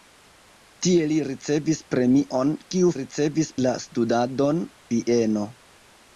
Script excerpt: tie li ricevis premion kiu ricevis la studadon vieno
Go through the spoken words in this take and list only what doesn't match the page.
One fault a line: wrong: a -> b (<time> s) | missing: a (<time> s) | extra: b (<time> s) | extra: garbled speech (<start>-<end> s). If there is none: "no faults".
no faults